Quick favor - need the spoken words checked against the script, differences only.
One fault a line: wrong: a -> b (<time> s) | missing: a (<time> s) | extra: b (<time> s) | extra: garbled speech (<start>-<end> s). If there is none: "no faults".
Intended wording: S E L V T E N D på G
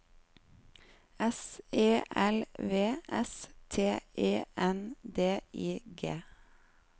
extra: S (3.1 s)
wrong: på -> I (5.5 s)